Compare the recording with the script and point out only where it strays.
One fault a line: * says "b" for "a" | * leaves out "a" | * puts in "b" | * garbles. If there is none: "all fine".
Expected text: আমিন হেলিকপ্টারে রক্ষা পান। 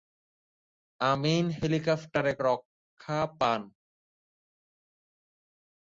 all fine